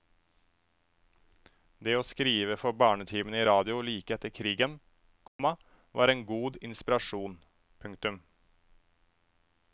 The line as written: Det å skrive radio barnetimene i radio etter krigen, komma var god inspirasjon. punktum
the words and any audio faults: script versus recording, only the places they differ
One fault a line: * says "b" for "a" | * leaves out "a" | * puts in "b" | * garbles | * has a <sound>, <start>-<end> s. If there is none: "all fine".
* says "for" for "radio"
* puts in "like"
* has a dropout, 5.3-5.4 s
* puts in "en"